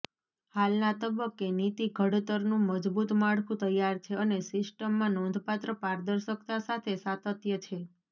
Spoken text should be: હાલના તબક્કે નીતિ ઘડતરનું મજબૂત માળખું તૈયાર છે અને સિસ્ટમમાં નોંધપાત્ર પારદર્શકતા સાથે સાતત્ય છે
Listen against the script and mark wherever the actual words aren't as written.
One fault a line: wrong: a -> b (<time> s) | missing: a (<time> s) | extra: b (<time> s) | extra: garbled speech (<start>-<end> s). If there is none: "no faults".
no faults